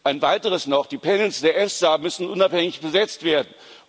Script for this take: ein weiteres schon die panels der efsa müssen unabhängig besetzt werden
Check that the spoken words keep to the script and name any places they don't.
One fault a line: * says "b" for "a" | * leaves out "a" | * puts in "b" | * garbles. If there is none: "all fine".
* says "noch" for "schon"